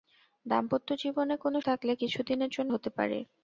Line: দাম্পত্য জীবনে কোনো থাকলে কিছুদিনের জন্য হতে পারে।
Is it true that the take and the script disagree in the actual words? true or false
false